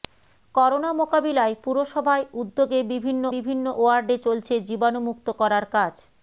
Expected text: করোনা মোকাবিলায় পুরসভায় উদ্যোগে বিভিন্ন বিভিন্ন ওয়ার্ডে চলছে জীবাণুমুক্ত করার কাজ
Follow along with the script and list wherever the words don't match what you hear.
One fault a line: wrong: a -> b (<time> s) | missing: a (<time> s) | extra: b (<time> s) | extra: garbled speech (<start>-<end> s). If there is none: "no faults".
no faults